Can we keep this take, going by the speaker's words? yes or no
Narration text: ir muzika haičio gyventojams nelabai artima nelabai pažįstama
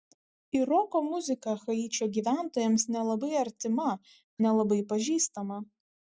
no